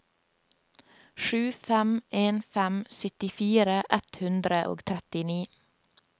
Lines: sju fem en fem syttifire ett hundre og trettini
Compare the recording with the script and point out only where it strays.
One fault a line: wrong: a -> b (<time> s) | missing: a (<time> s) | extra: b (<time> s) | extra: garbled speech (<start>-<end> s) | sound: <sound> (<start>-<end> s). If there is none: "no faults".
no faults